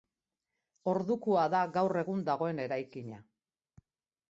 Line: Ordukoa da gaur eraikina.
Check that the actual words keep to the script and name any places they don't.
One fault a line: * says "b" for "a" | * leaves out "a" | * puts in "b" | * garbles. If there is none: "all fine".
* puts in "egun dagoen"